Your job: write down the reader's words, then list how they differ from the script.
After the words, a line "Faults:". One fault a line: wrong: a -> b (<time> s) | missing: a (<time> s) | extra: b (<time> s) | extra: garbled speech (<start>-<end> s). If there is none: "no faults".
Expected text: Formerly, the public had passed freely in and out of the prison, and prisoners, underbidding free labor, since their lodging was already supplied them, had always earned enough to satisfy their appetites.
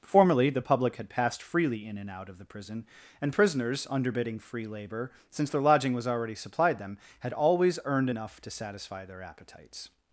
Formerly, the public had passed freely in and out of the prison, and prisoners, underbidding free labor, since their lodging was already supplied them, had always earned enough to satisfy their appetites.
Faults:
no faults